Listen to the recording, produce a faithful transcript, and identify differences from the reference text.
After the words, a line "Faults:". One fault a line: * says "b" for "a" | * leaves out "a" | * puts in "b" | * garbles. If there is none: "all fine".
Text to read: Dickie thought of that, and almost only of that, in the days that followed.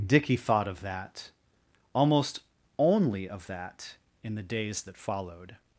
Dickie thought of that, almost only of that, in the days that followed.
Faults:
* leaves out "and"